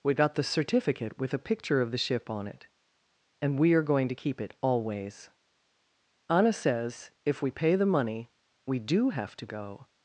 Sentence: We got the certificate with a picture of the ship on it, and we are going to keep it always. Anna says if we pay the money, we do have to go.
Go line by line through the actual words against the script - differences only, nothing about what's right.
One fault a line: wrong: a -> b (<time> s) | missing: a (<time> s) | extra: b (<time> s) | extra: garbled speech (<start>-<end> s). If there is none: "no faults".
no faults